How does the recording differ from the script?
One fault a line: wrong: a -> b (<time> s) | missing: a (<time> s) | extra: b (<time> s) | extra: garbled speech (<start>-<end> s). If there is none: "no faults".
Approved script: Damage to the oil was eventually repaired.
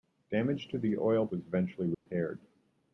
no faults